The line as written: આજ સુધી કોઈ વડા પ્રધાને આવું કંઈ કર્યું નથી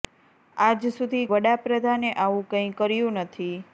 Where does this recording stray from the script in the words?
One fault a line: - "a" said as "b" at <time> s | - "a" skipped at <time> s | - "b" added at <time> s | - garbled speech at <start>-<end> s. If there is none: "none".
- "કોઈ" skipped at 1.2 s